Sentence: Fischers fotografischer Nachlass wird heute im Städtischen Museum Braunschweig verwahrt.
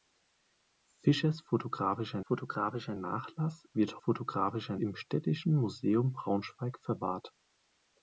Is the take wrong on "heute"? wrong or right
wrong